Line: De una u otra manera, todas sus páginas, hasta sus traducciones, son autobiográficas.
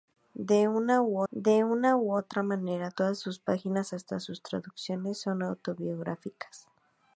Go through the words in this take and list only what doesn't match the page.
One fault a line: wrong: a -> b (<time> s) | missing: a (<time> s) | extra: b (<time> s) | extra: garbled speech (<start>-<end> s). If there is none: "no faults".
extra: de una u (1.3 s)